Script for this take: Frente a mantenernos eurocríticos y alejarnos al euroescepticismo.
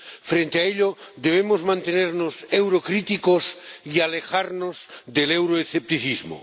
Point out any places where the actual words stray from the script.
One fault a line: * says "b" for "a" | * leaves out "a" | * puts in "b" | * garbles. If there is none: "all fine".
* puts in "ello debemos"
* says "del" for "al"